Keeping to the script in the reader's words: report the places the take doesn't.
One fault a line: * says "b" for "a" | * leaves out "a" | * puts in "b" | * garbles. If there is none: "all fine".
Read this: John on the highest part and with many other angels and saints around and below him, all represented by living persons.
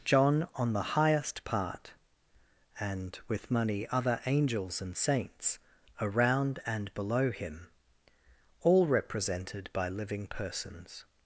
* says "money" for "many"